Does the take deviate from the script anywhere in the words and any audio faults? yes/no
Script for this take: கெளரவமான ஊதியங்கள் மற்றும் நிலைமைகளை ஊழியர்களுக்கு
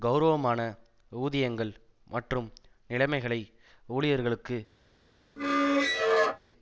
yes